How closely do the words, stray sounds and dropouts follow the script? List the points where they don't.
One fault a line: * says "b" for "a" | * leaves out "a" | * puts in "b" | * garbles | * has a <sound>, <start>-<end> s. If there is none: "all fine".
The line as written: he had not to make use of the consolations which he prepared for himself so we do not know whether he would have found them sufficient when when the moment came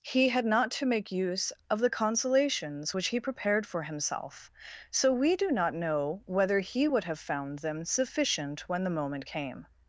* leaves out "when"